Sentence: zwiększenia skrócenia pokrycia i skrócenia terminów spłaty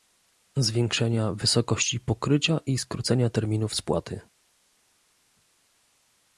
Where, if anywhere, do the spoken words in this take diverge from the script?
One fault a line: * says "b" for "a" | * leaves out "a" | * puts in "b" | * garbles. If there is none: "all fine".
* says "wysokości" for "skrócenia"